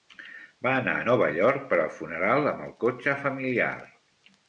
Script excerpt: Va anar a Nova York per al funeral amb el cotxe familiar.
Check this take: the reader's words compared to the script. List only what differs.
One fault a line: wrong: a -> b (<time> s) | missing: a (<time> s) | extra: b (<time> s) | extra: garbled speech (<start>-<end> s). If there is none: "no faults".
no faults